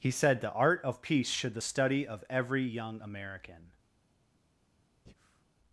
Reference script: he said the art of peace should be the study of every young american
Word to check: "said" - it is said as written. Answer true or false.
true